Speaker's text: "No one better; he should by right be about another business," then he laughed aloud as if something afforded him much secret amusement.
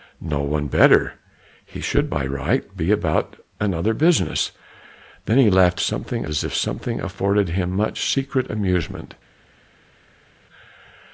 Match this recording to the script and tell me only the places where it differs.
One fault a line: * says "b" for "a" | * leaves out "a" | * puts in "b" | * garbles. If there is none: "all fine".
* says "something" for "aloud"